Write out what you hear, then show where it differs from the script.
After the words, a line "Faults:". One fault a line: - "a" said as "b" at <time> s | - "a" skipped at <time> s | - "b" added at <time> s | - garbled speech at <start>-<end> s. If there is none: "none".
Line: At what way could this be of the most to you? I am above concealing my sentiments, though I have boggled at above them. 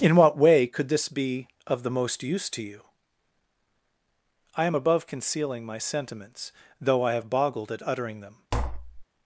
In what way could this be of the most use to you? I am above concealing my sentiments, though I have boggled at uttering them.
Faults:
- "At" said as "In" at 0.0 s
- "use" added at 2.2 s
- "above" said as "uttering" at 7.8 s